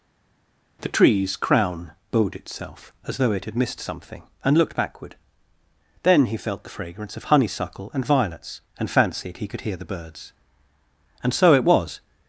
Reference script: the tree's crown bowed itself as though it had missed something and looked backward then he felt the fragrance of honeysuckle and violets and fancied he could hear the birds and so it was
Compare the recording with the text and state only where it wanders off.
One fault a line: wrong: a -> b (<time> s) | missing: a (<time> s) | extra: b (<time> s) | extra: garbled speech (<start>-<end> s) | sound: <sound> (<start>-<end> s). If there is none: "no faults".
no faults